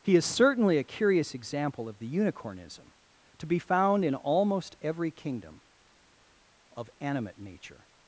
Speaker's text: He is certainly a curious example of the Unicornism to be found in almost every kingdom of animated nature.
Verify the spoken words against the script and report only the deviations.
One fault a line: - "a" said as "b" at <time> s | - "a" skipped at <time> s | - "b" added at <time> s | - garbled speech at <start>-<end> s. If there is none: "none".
- "animated" said as "animate" at 7.0 s